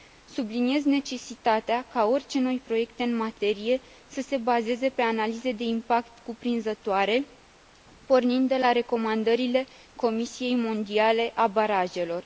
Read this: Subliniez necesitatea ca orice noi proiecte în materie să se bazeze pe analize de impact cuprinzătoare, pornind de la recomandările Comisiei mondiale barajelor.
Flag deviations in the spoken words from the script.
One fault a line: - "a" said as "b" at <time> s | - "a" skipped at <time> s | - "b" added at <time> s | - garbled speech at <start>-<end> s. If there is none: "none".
- "a" added at 11.3 s